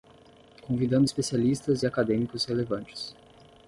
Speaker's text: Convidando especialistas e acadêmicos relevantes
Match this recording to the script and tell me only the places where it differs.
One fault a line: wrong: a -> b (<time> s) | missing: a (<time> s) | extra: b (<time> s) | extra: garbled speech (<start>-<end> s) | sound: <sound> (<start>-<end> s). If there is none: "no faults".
no faults